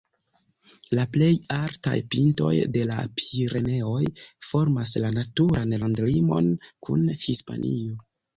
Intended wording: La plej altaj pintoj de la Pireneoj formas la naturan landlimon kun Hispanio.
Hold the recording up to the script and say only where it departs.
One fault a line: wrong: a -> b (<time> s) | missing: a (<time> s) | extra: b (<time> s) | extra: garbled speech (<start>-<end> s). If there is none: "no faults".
no faults